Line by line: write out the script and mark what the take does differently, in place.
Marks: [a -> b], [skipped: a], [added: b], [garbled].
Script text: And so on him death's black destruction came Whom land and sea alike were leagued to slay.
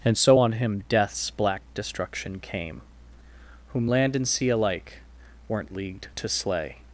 And so on him death's black destruction came Whom land and sea alike [were -> weren't] leagued to slay.